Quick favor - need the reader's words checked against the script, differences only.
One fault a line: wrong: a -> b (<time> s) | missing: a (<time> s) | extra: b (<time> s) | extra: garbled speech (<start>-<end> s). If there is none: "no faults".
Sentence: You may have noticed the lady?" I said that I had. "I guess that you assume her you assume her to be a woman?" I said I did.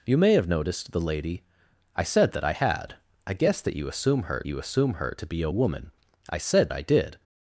no faults